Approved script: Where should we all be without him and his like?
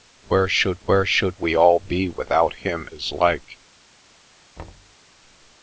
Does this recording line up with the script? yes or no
no